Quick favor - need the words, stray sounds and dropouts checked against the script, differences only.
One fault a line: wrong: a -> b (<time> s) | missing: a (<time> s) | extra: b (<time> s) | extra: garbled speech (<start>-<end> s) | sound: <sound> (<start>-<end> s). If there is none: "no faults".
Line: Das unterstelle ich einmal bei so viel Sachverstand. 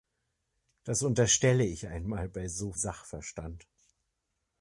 missing: viel (2.7 s)